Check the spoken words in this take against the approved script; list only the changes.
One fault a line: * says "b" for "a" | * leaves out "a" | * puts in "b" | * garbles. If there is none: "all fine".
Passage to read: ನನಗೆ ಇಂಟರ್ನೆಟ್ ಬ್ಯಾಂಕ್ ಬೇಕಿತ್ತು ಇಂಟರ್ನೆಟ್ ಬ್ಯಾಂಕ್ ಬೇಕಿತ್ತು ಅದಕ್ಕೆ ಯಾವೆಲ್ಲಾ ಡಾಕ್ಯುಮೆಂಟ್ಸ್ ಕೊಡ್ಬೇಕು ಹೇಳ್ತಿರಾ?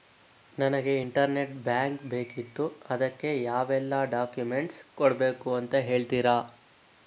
* leaves out "ಇಂಟರ್ನೆಟ್ ಬ್ಯಾಂಕ್ ಬೇಕಿತ್ತು"
* puts in "ಅಂತ"